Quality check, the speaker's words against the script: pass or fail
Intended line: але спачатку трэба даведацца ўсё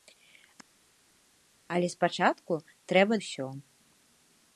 fail